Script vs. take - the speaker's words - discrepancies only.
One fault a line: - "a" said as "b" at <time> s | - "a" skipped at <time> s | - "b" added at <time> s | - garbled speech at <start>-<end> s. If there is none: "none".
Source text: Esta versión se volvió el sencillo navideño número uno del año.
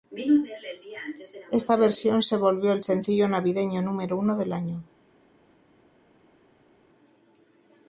none